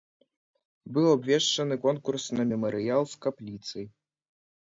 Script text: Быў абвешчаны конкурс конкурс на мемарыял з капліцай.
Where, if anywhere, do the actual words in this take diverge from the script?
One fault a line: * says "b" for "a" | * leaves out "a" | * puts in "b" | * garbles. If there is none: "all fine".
* leaves out "конкурс"